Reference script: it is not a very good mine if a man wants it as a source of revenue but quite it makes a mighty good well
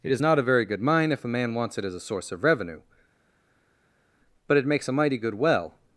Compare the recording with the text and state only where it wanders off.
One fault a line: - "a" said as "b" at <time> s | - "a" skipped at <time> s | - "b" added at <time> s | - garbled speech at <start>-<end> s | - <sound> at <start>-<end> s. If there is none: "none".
- "quite" skipped at 4.6 s